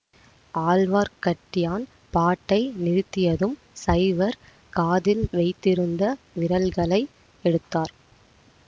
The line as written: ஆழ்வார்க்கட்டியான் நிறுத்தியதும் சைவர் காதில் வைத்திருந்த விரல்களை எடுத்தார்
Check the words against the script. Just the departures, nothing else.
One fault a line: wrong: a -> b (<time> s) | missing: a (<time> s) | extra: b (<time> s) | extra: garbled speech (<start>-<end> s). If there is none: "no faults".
extra: பாட்டை (2.1 s)